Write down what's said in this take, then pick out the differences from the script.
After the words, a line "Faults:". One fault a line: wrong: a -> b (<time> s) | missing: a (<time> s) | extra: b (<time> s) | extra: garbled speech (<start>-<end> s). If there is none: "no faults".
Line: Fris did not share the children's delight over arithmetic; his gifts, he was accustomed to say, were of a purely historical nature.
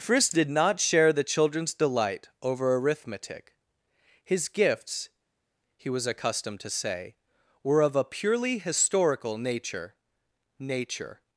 Fris did not share the children's delight over arithmetic; his gifts, he was accustomed to say, were of a purely historical nature nature.
Faults:
extra: nature (10.6 s)